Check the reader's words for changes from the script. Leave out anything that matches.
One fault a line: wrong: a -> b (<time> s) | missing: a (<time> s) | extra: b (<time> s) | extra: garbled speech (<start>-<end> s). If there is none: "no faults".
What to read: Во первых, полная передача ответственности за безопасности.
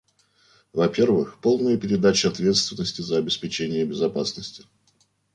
extra: обеспечение (3.2 s)